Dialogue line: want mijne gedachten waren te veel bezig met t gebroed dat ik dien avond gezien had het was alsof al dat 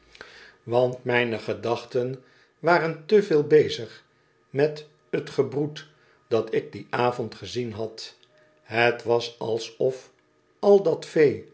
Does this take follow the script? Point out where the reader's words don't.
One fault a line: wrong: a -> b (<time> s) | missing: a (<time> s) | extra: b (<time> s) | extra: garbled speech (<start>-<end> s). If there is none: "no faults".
no faults